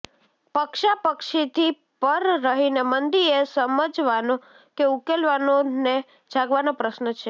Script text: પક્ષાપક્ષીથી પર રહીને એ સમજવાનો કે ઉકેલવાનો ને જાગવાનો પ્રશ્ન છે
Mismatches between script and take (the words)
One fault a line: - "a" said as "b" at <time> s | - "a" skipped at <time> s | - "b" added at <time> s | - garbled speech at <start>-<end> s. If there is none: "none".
- "મંદી" added at 2.8 s